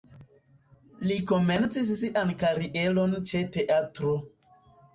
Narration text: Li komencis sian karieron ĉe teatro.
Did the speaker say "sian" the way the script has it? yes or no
yes